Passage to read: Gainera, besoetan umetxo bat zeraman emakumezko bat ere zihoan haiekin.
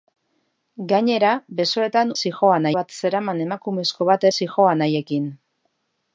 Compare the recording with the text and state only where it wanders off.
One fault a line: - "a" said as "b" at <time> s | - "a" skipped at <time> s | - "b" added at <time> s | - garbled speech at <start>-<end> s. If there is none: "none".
- "umetxo" said as "zihoan" at 2.2 s
- "ere" skipped at 4.3 s